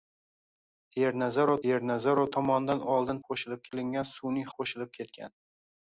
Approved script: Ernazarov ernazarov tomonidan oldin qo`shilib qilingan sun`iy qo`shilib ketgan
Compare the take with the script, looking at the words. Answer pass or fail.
pass